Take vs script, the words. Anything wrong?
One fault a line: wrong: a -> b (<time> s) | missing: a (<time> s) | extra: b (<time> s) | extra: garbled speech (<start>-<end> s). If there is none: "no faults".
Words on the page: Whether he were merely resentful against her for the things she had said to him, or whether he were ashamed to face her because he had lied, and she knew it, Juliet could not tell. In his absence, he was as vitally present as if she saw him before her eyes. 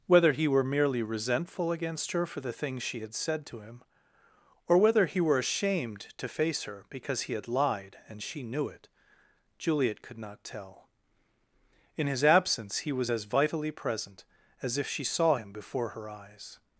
no faults